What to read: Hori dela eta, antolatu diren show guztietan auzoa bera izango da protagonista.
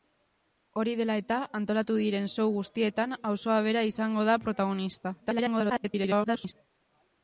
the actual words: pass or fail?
fail